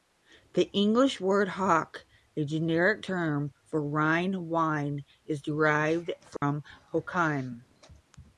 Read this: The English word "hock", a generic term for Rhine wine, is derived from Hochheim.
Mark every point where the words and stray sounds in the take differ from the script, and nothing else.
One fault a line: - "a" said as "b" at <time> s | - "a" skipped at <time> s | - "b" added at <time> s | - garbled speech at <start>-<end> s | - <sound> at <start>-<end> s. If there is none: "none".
- dropout at 6.4-6.4 s